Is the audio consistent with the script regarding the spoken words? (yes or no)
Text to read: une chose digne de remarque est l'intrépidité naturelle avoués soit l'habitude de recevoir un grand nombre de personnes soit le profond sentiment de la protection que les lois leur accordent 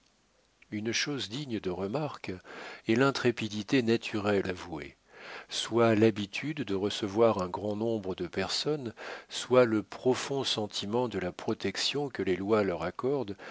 yes